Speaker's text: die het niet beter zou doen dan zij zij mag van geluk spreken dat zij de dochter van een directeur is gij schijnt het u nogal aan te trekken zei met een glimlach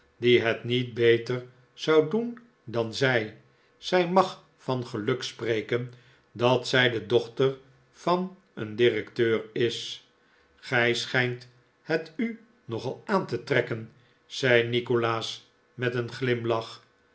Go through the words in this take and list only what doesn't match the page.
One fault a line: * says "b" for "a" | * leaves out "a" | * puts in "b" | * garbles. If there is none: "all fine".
* puts in "nikolaas"